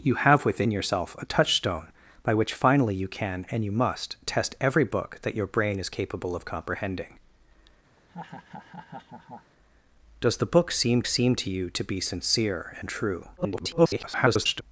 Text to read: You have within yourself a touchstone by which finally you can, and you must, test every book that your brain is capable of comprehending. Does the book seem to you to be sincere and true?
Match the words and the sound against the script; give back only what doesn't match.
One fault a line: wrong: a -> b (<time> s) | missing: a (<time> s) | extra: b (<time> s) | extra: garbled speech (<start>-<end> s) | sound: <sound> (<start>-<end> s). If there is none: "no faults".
sound: laugh (8.0-9.5 s)
extra: seem (11.1 s)
extra: garbled speech (13.4-14.6 s)